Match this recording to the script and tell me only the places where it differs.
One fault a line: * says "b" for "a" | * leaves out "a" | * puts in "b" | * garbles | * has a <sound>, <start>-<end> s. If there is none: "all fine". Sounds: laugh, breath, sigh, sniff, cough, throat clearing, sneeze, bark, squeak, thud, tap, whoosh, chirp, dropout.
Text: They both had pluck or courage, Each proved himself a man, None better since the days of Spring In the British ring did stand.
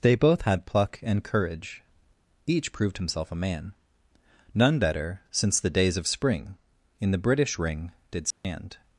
* says "and" for "or"
* has a dropout, 8.3-8.4 s